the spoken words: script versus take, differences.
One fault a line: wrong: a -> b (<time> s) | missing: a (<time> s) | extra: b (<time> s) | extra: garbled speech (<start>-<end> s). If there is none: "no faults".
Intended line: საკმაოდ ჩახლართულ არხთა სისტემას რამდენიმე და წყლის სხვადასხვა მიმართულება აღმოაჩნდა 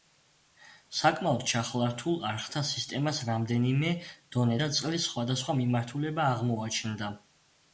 extra: დონე (4.4 s)